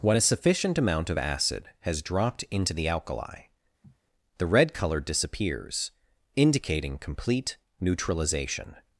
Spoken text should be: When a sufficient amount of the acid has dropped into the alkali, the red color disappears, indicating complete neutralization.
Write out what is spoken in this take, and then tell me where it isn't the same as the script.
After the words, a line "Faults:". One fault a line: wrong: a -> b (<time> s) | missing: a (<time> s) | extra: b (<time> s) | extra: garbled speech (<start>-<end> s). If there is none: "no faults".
When a sufficient amount of acid has dropped into the alkali, the red color disappears, indicating complete neutralization.
Faults:
missing: the (1.2 s)